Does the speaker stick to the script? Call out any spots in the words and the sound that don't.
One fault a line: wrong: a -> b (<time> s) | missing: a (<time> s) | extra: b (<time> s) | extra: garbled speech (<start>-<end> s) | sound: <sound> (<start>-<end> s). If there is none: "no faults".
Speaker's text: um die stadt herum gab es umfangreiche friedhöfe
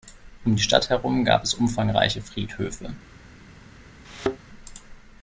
sound: thud (4.0-4.4 s)